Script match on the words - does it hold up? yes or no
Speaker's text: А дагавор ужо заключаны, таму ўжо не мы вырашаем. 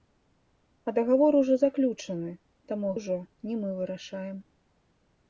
yes